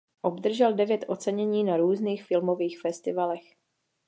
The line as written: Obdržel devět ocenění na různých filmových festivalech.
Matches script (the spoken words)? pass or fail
pass